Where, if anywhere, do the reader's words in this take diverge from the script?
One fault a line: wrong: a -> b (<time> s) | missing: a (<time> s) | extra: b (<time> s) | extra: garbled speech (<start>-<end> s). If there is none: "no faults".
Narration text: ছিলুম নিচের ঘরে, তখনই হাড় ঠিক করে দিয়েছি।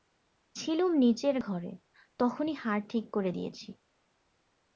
no faults